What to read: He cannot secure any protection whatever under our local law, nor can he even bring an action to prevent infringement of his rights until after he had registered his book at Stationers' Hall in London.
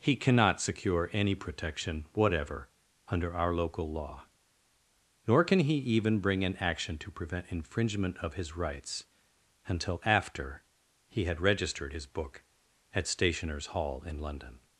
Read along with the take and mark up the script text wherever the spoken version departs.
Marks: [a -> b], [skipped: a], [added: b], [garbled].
He cannot secure any protection whatever under our local law, nor can he even bring an action to prevent infringement of his rights until after he had registered his book at Stationers' Hall in London.